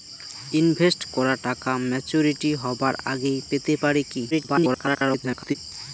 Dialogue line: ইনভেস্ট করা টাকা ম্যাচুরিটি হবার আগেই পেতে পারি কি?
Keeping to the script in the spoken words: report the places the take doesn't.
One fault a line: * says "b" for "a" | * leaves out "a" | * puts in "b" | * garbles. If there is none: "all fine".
* garbles